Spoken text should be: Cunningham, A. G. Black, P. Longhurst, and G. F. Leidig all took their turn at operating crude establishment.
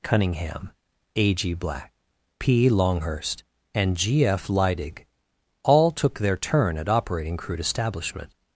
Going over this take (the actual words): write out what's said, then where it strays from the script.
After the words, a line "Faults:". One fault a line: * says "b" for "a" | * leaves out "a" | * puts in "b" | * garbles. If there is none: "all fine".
Cunningham, A. G. Black, P. Longhurst, and G. F. Leidig all took their turn at operating crude establishment.
Faults:
all fine